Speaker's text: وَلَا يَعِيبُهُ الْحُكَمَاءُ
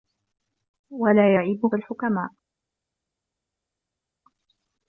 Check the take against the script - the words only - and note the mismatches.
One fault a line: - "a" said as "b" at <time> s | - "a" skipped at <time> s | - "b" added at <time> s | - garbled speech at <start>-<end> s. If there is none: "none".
none